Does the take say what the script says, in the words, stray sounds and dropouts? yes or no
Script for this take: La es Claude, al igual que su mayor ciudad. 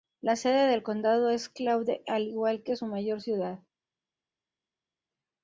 no